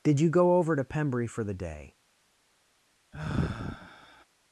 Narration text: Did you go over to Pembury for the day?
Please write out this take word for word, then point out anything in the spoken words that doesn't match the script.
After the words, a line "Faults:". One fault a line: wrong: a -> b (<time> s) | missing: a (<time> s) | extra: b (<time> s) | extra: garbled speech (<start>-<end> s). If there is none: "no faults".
Did you go over to Pembury for the day?
Faults:
no faults